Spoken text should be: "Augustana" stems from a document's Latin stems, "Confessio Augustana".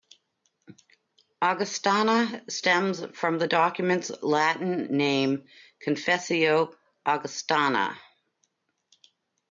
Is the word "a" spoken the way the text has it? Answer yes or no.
no